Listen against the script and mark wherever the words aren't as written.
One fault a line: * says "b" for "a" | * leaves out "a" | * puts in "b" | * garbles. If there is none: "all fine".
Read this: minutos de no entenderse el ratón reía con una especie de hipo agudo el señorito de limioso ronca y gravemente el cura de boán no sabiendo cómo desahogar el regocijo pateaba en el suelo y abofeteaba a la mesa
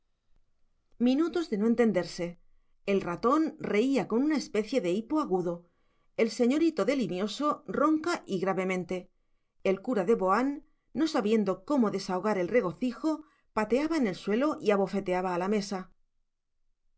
all fine